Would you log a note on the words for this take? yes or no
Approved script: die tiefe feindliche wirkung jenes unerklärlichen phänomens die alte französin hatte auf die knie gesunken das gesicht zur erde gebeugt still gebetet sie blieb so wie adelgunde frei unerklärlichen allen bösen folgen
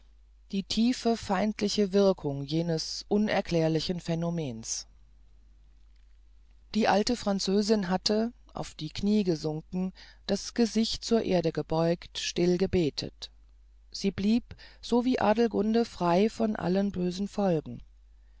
yes